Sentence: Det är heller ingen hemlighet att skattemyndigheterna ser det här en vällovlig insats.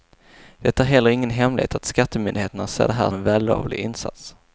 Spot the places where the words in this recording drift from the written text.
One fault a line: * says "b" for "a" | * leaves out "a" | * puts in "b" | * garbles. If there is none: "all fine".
all fine